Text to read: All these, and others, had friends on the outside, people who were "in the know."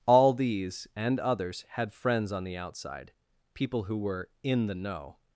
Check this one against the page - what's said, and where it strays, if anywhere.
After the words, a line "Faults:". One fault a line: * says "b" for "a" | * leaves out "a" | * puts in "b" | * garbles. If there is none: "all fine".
All these, and others, had friends on the outside, people who were "in the know."
Faults:
all fine